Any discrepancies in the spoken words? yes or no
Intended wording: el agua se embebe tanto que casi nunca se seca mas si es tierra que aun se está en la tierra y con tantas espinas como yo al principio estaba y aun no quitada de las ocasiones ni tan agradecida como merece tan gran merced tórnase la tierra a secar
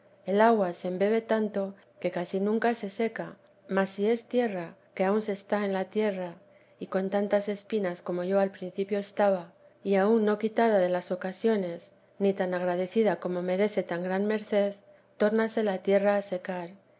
no